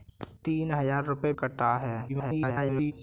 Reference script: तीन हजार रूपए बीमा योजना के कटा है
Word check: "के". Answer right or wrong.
wrong